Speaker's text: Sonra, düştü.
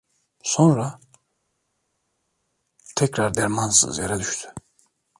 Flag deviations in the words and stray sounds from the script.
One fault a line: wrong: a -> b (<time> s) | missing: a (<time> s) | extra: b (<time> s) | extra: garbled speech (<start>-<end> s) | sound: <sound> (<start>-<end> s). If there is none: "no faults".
extra: tekrar dermansız yere (3.0 s)